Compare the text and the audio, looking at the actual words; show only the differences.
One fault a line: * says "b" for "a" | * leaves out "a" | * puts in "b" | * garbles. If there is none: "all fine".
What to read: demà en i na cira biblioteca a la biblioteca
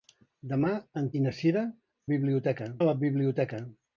all fine